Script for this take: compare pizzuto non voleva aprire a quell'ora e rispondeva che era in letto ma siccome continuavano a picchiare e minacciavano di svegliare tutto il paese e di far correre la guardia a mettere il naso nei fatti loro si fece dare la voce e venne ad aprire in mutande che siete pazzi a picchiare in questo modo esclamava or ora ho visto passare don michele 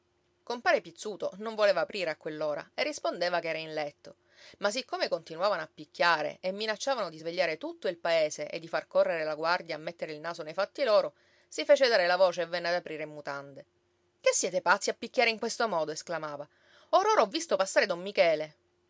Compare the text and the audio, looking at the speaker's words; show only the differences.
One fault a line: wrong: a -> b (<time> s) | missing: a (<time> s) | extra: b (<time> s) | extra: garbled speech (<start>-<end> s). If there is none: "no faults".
no faults